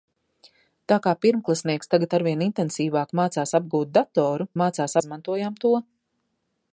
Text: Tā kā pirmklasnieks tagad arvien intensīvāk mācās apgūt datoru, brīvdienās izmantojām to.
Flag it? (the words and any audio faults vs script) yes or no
yes